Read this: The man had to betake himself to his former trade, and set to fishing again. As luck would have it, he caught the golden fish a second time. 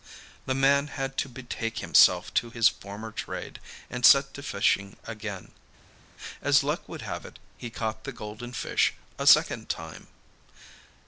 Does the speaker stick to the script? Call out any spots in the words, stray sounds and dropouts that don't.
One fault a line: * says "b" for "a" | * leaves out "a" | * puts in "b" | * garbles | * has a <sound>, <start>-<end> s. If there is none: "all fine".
all fine